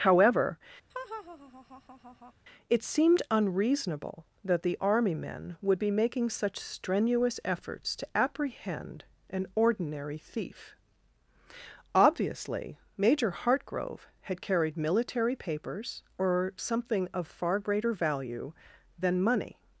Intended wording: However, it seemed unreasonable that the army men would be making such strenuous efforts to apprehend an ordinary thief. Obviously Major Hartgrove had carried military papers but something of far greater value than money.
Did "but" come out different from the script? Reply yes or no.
yes